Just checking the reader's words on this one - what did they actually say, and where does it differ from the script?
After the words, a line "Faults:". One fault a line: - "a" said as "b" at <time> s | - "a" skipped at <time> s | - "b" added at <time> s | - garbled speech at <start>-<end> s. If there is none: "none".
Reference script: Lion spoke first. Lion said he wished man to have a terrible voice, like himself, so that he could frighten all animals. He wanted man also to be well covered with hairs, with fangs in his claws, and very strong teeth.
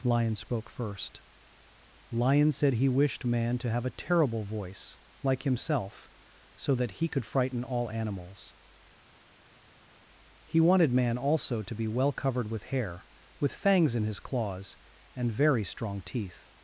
Lion spoke first. Lion said he wished man to have a terrible voice, like himself, so that he could frighten all animals. He wanted man also to be well covered with hair, with fangs in his claws, and very strong teeth.
Faults:
- "hairs" said as "hair" at 12.6 s